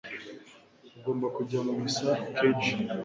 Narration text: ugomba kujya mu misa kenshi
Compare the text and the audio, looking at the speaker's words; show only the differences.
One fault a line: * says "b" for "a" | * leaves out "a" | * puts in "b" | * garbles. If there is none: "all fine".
all fine